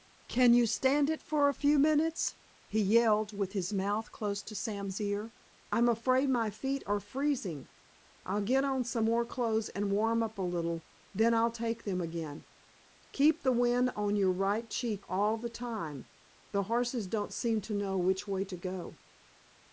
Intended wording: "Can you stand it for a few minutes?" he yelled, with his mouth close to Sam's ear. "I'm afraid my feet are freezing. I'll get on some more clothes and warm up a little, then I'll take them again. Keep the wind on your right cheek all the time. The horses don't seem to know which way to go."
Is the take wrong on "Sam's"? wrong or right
right